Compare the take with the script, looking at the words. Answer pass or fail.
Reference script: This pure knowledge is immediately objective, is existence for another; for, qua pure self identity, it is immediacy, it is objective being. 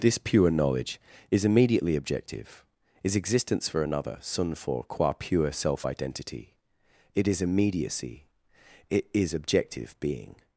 fail